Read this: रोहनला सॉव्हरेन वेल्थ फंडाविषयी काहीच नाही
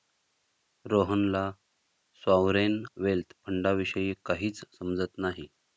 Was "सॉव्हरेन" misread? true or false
false